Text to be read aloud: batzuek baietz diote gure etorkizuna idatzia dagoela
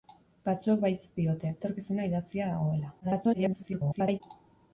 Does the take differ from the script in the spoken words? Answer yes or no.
yes